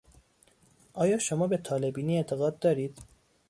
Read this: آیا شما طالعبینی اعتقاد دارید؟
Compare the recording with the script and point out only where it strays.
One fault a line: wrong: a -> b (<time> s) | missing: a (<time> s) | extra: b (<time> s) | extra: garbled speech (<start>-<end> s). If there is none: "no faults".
extra: به (1.5 s)